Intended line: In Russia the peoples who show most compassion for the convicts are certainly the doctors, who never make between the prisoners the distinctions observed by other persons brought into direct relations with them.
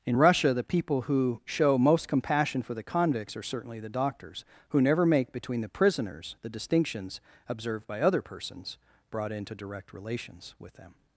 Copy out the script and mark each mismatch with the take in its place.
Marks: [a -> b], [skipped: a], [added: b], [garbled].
In Russia the [peoples -> people] who show most compassion for the convicts are certainly the doctors, who never make between the prisoners the distinctions observed by other persons brought into direct relations with them.